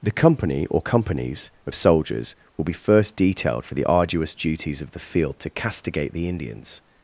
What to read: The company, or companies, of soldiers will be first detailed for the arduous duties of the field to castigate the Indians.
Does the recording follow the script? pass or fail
pass